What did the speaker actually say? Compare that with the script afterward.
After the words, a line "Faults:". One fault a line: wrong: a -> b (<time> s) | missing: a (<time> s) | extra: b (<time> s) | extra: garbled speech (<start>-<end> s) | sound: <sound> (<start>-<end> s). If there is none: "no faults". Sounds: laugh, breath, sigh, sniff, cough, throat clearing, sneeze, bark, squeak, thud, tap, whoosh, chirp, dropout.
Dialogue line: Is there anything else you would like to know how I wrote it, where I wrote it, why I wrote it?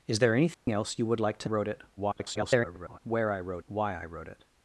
Is there anything else you would like to wrote it, [garbled] where I wrote why I wrote it?
Faults:
sound: dropout (0.5-0.7 s)
missing: know how I (1.5 s)
extra: garbled speech (2.0-3.0 s)
missing: it (3.6 s)